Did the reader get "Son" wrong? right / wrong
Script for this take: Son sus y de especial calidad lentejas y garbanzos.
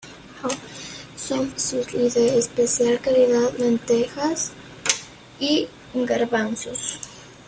right